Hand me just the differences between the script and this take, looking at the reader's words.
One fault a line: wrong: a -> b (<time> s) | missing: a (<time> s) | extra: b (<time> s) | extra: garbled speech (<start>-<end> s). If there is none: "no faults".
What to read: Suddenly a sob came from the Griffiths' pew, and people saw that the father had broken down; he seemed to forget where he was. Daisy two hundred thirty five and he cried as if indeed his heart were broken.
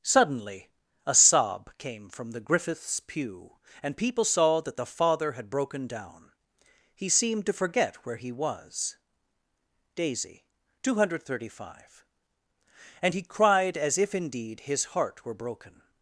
no faults